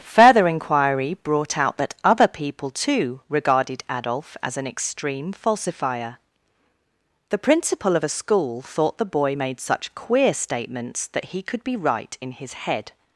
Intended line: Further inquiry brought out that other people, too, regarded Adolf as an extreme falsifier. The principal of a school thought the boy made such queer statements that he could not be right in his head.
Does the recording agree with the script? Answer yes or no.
no